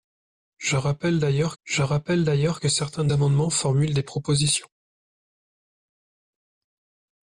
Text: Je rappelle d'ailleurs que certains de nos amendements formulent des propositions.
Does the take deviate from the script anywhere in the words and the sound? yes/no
yes